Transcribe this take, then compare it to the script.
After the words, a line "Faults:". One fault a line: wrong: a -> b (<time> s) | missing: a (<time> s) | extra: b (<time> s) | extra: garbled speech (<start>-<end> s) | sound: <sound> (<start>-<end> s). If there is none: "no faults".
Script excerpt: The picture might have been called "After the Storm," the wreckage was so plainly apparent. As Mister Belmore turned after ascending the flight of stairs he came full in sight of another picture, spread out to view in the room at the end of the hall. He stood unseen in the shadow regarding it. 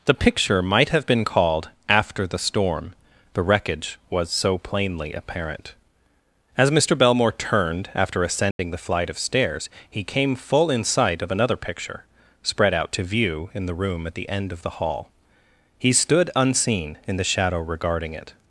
The picture might have been called "After the Storm," the wreckage was so plainly apparent. As Mister Belmore turned after ascending the flight of stairs he came full in sight of another picture, spread out to view in the room at the end of the hall. He stood unseen in the shadow regarding it.
Faults:
sound: dropout (8.5-8.6 s)